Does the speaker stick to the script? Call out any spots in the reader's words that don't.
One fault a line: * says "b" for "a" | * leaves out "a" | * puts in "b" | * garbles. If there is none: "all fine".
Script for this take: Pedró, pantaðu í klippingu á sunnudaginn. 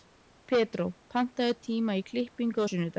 * puts in "tíma"